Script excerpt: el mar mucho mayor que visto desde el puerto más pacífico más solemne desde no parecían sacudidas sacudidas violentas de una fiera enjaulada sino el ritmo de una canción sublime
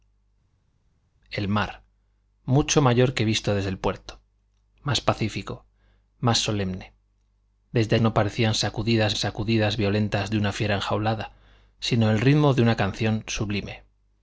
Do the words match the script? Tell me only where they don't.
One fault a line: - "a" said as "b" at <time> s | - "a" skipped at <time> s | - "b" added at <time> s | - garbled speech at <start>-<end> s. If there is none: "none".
none